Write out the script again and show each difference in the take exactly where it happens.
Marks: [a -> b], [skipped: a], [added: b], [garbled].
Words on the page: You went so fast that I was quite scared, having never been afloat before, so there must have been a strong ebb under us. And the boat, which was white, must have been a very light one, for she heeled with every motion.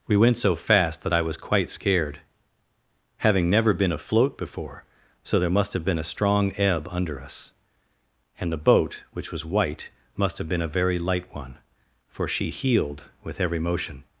[You -> We] went so fast that I was quite scared, having never been afloat before, so there must have been a strong ebb under us. And the boat, which was white, must have been a very light one, for she heeled with every motion.